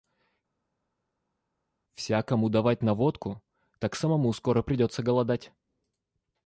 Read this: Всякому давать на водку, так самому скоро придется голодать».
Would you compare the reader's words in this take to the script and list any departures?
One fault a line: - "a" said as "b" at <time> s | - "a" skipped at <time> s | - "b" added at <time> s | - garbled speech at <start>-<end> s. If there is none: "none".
none